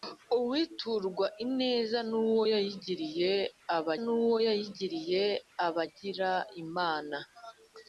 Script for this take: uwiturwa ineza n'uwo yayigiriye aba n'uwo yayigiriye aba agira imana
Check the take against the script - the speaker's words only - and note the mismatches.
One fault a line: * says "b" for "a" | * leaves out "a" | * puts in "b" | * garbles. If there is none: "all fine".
all fine